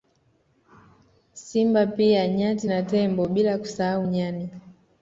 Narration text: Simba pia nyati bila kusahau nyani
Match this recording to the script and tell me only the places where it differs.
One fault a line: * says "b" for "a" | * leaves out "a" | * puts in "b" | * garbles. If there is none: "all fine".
* puts in "na tembo"